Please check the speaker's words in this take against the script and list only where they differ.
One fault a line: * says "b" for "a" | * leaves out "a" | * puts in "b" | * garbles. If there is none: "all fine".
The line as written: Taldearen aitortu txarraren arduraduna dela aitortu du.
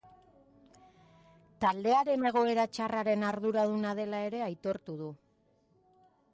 * says "egoera" for "aitortu"
* puts in "ere"